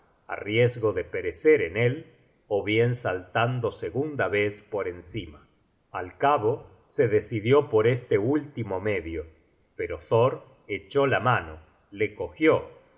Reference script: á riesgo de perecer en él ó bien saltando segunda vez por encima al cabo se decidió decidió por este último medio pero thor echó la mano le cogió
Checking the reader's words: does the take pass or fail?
fail